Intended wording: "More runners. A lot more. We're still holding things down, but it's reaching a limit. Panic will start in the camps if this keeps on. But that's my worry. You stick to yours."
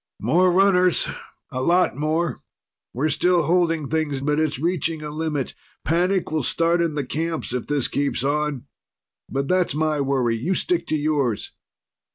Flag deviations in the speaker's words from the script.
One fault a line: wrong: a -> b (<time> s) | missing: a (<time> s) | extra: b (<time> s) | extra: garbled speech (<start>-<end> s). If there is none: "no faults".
missing: down (4.2 s)